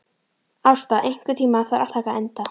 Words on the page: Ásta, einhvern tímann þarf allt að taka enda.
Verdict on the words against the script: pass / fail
fail